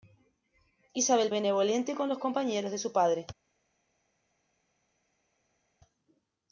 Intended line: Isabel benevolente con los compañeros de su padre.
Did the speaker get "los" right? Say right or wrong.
right